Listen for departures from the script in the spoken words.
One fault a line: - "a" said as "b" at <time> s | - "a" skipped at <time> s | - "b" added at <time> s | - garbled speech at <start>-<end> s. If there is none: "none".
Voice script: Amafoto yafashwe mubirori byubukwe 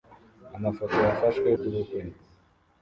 - "mubirori" skipped at 1.5 s